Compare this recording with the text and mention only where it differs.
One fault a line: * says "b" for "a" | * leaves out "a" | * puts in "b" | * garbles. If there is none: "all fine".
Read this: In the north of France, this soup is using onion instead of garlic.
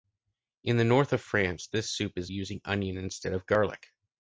all fine